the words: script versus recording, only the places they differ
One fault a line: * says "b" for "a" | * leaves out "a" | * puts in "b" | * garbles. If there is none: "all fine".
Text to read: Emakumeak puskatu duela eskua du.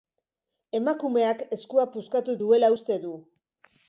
* puts in "eskua"
* says "uste" for "eskua"